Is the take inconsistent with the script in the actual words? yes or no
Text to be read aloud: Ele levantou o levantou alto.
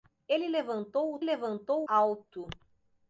no